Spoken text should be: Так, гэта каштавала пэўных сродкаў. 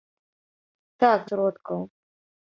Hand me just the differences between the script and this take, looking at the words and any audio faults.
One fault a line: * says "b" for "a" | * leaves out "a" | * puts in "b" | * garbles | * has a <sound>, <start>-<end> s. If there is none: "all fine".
* leaves out "гэта каштавала пэўных"